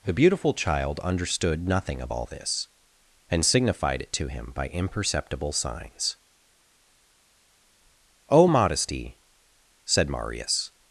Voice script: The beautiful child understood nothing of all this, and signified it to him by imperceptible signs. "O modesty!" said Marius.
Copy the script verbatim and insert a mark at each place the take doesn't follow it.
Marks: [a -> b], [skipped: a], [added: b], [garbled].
The beautiful child understood nothing of all this, and signified it to him by imperceptible signs. "O modesty!" said Marius.